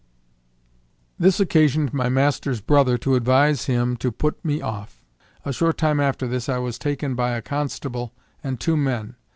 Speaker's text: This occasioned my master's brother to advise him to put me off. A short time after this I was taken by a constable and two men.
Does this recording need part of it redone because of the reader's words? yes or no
no